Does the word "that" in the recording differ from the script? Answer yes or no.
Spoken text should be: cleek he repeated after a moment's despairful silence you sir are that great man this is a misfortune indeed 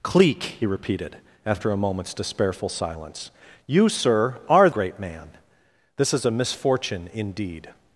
yes